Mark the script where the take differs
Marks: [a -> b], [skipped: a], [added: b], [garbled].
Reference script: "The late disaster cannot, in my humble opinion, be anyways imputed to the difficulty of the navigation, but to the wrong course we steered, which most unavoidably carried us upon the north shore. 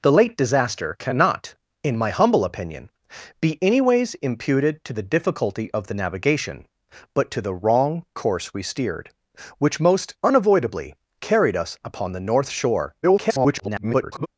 "The late disaster cannot, in my humble opinion, be anyways imputed to the difficulty of the navigation, but to the wrong course we steered, which most unavoidably carried us upon the north shore. [garbled]